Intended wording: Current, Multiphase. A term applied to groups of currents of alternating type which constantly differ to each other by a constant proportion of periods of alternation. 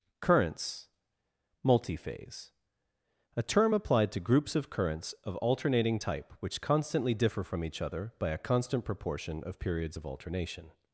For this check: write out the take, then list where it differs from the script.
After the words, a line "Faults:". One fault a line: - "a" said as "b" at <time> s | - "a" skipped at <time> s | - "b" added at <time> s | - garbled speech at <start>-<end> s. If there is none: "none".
Currents, Multiphase. A term applied to groups of currents of alternating type which constantly differ from each other by a constant proportion of periods of alternation.
Faults:
- "Current" said as "Currents" at 0.2 s
- "to" said as "from" at 7.4 s